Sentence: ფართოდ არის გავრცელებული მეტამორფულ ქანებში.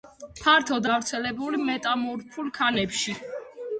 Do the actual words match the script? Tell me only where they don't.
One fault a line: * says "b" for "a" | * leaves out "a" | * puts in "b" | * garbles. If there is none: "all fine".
* leaves out "არის"